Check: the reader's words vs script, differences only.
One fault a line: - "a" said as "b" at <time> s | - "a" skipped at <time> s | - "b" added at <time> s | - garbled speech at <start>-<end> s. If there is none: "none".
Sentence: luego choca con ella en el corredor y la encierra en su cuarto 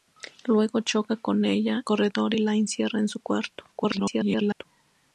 - "en el" skipped at 1.9 s
- garbled speech at 3.7-4.6 s